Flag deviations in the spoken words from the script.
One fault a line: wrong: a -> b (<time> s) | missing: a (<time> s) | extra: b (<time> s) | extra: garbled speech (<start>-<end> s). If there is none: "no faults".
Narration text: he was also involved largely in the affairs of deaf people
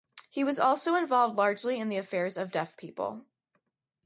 no faults